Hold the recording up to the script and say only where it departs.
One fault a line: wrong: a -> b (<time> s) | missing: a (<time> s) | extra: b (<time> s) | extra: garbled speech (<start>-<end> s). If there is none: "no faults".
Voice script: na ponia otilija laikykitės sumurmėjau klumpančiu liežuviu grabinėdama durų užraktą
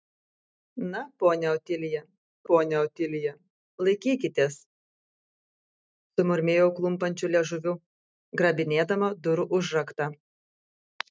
extra: ponia otilija (2.5 s)